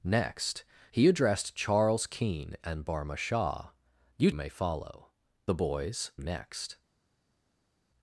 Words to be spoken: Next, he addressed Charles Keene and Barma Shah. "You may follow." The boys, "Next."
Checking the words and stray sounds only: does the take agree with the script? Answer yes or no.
yes